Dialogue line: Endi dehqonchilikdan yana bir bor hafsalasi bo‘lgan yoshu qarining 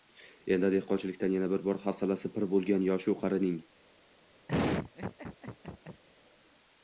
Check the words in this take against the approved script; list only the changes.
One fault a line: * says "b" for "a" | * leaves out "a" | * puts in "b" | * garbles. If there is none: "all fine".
* puts in "pir"